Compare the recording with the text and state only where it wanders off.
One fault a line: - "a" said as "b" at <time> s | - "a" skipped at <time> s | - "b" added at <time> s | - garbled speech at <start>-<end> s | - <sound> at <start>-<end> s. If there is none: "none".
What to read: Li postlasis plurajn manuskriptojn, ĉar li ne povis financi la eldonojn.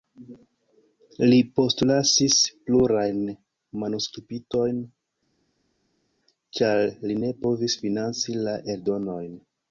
none